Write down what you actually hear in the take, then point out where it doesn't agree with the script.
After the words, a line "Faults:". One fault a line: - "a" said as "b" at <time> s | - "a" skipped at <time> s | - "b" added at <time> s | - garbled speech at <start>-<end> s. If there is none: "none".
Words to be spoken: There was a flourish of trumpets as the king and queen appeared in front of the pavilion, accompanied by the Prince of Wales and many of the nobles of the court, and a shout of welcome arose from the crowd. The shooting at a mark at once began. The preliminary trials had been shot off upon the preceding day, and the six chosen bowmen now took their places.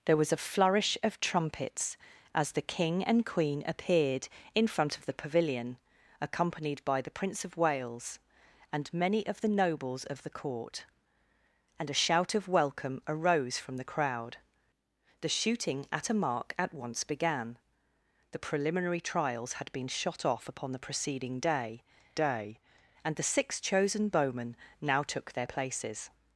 There was a flourish of trumpets as the king and queen appeared in front of the pavilion, accompanied by the Prince of Wales and many of the nobles of the court, and a shout of welcome arose from the crowd. The shooting at a mark at once began. The preliminary trials had been shot off upon the preceding day day, and the six chosen bowmen now took their places.
Faults:
- "day" added at 22.1 s